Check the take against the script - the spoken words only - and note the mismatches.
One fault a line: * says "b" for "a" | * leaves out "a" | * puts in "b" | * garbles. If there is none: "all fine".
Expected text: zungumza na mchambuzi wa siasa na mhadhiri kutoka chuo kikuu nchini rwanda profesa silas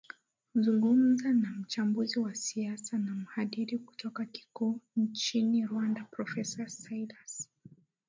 * leaves out "chuo"